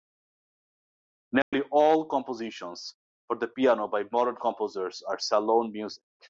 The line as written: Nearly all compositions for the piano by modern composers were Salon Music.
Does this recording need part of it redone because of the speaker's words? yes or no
yes